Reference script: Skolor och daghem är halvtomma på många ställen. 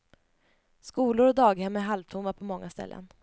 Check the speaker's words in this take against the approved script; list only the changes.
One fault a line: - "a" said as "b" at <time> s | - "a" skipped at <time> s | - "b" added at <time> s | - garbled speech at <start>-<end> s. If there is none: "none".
none